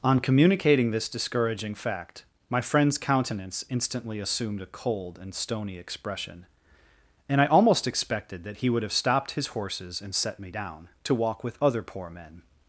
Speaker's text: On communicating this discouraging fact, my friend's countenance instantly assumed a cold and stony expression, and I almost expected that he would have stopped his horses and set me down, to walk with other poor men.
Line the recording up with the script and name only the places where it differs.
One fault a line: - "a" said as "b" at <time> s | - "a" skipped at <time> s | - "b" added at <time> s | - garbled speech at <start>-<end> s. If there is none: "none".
none